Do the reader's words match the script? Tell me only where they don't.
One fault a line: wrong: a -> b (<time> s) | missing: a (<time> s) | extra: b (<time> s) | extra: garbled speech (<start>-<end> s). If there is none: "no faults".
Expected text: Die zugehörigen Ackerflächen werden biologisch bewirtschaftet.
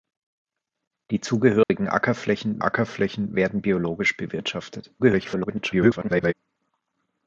extra: Ackerflächen (2.6 s)
extra: garbled speech (5.0-6.3 s)